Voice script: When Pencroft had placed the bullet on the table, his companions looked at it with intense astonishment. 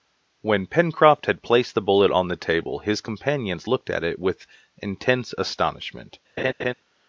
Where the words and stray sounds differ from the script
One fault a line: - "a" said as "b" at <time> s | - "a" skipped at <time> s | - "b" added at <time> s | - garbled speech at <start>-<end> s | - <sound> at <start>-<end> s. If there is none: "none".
- laugh at 6.4-6.7 s